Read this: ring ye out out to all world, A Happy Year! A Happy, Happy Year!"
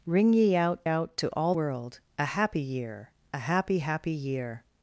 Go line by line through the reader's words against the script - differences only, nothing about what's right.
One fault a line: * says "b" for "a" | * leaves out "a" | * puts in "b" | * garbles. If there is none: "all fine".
all fine